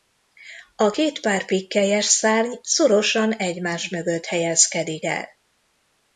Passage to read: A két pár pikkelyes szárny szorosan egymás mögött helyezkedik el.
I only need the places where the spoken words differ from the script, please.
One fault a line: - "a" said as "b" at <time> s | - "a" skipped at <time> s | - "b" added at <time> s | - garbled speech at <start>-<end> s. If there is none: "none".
none